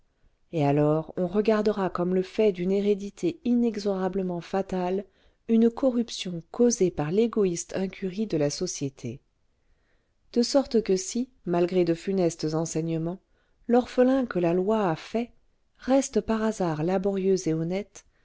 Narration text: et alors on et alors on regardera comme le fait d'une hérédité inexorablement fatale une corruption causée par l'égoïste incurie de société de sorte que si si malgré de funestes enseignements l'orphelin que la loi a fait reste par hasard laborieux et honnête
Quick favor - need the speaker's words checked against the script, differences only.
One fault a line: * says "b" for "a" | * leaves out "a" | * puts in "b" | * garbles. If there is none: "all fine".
* leaves out "et alors on"
* puts in "la"
* leaves out "si"